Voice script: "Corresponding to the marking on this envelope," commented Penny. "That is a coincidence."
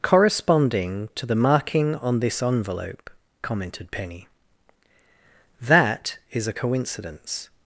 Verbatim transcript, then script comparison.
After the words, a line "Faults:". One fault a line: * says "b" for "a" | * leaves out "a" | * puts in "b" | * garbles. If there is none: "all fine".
"Corresponding to the marking on this envelope," commented Penny. "That is a coincidence."
Faults:
all fine